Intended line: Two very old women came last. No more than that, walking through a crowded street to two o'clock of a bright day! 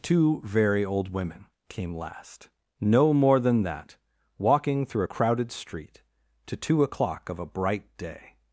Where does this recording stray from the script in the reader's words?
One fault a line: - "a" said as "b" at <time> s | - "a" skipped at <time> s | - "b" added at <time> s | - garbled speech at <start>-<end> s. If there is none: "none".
none